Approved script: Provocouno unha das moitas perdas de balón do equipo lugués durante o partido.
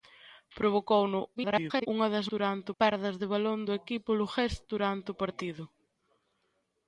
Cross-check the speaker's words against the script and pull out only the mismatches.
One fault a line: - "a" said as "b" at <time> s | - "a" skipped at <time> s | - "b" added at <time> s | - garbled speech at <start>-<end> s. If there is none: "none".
- garbled speech at 1.4-1.9 s
- "moitas" said as "durante" at 2.3 s